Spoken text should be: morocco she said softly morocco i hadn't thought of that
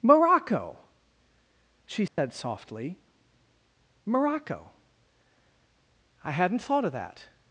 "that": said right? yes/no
yes